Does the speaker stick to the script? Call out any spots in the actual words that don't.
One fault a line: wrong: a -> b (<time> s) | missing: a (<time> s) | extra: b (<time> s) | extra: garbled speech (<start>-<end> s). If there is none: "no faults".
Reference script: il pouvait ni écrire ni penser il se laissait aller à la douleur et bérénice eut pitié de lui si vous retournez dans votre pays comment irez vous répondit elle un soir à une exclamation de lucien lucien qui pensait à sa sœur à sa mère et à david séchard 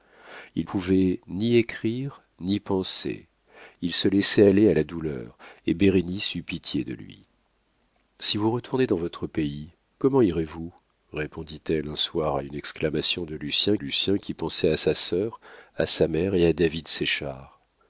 no faults